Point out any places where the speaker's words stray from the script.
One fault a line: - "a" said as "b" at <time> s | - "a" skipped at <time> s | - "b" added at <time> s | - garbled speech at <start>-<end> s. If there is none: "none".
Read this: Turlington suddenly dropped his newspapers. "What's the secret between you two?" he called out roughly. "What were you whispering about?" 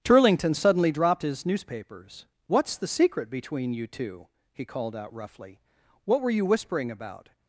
none